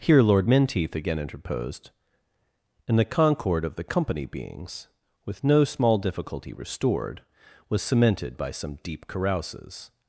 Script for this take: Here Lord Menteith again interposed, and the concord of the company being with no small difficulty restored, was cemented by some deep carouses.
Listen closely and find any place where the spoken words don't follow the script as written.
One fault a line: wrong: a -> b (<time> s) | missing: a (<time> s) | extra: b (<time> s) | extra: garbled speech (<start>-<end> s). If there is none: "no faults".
wrong: being -> beings (4.2 s)